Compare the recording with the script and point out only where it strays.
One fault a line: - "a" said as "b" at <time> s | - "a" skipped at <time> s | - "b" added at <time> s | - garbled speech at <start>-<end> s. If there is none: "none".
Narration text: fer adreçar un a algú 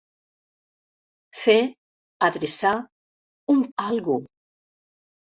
none